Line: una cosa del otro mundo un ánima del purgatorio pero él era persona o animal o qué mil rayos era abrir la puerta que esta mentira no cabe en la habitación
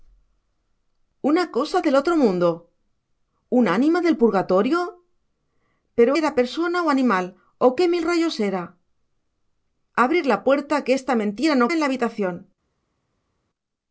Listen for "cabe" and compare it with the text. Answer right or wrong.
wrong